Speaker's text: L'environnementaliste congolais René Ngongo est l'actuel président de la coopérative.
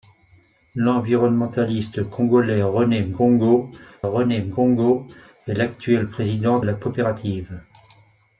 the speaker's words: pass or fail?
fail